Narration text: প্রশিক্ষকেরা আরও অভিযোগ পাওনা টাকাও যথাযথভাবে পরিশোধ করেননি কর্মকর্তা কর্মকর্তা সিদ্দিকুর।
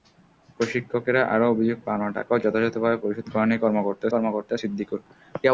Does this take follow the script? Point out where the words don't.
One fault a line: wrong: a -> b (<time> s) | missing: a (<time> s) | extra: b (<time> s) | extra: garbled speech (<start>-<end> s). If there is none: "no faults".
no faults